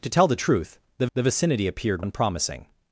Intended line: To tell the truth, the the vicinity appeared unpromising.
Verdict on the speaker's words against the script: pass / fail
pass